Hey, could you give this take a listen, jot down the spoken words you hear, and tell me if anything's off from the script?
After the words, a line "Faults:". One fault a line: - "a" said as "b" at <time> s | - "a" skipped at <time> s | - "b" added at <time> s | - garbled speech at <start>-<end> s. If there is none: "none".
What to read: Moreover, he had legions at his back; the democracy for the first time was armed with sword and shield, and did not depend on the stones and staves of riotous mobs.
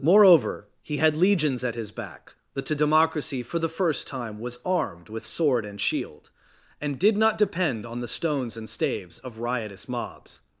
Moreover, he had legions at his back; the democracy for the first time was armed with sword and shield, and did not depend on the stones and staves of riotous mobs.
Faults:
none